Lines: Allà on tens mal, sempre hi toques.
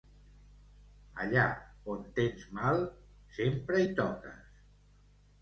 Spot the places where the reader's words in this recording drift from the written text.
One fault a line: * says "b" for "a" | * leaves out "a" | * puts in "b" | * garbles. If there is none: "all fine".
all fine